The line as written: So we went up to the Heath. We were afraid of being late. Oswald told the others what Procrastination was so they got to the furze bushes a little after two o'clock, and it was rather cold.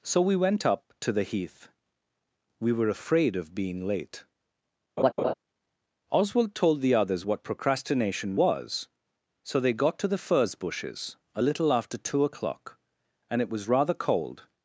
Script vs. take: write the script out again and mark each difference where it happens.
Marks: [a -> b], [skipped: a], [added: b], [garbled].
So we went up to the Heath. We were afraid of being late. Oswald told the others what Procrastination was so they got to the furze bushes a little after two o'clock, and it was rather cold.